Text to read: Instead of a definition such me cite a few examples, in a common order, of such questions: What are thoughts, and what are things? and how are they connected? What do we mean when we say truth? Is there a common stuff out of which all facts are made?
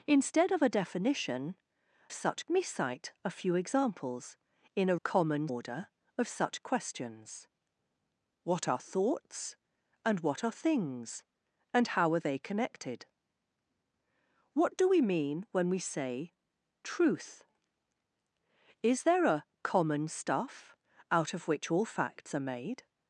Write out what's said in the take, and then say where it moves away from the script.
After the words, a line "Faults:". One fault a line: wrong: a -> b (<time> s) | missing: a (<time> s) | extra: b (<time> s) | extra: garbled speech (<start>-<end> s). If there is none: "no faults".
Instead of a definition such me cite a few examples, in a common order, of such questions: What are thoughts, and what are things? and how are they connected? What do we mean when we say truth? Is there a common stuff out of which all facts are made?
Faults:
no faults